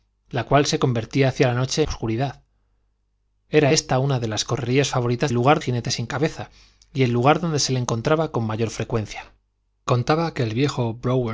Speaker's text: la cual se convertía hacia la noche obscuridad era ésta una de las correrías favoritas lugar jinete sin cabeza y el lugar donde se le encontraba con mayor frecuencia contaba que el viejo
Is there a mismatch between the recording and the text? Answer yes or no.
no